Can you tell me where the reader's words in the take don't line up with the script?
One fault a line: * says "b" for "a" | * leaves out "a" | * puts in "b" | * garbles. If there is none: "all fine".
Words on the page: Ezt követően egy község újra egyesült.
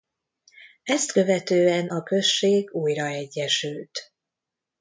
* says "a" for "egy"